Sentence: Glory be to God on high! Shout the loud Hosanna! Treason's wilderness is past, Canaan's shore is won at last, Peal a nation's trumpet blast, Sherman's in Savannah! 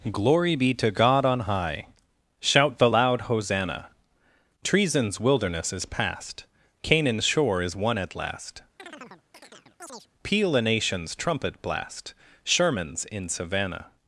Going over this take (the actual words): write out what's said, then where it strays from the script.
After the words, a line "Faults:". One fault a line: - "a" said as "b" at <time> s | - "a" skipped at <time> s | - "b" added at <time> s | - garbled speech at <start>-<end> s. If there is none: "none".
Glory be to God on high! Shout the loud Hosanna! Treason's wilderness is past, Canaan's shore is won at last, Peal a nation's trumpet blast, Sherman's in Savannah!
Faults:
none